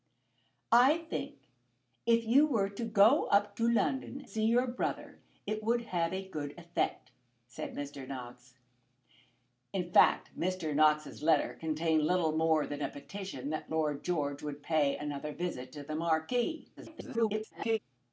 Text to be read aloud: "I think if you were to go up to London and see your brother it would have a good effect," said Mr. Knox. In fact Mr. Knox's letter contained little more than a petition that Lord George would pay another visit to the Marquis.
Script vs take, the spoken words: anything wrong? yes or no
yes